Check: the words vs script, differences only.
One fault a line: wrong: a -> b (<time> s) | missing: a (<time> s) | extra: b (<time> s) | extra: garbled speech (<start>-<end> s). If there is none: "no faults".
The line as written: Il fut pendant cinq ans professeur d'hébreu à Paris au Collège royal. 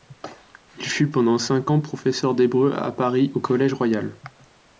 no faults